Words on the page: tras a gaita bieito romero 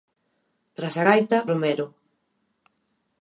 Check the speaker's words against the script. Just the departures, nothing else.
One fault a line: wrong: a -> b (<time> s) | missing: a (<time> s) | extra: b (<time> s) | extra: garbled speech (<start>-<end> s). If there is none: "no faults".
missing: bieito (1.4 s)